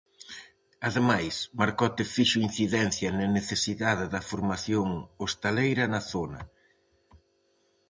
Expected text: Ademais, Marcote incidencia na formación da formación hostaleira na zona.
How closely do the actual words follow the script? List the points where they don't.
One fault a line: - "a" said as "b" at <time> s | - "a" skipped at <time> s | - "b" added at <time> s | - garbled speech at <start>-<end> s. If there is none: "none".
- "fixo" added at 2.1 s
- "formación" said as "necesidade" at 3.4 s